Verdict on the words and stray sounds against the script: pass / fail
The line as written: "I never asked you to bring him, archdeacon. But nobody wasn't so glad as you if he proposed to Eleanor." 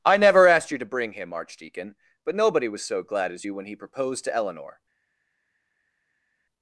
fail